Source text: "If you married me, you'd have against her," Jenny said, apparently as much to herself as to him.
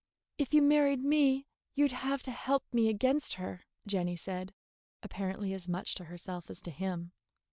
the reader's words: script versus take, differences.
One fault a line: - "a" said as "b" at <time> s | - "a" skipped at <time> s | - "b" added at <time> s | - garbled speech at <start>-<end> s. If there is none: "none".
- "to help me" added at 2.2 s